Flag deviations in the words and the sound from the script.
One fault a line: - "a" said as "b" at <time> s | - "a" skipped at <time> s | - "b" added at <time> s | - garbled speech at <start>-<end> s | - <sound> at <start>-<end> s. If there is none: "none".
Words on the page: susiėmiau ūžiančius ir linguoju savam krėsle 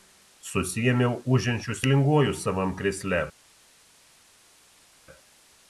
none